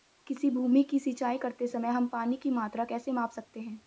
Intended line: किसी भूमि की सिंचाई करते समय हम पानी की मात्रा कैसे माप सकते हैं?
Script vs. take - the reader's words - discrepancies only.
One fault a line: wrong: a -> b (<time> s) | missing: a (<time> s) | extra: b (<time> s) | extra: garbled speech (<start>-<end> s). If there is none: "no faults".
no faults